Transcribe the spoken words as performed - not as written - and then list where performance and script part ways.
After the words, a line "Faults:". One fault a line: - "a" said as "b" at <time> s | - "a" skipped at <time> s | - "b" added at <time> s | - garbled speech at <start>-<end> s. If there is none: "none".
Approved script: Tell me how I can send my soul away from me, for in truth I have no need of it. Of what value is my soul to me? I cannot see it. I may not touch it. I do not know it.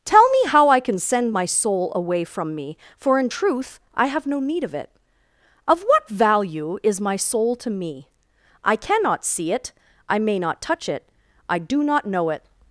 Tell me how I can send my soul away from me, for in truth I have no need of it. Of what value is my soul to me? I cannot see it. I may not touch it. I do not know it.
Faults:
none